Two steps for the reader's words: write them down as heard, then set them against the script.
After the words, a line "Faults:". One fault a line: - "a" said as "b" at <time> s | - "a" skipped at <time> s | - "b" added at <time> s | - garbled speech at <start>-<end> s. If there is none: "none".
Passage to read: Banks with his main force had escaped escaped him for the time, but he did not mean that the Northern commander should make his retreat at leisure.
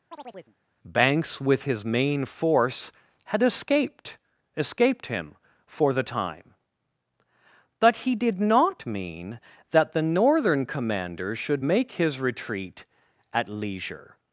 Banks with his main force had escaped escaped him for the time, but he did not mean that the Northern commander should make his retreat at leisure.
Faults:
none